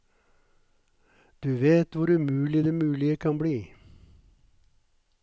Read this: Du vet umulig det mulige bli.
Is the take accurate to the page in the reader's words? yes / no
no